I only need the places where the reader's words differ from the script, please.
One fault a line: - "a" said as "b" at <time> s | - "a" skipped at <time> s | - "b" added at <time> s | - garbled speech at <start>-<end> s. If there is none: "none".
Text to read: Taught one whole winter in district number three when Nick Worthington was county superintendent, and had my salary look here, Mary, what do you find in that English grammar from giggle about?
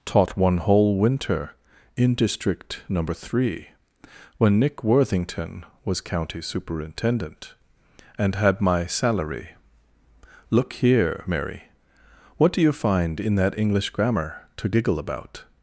- "from" said as "to" at 14.6 s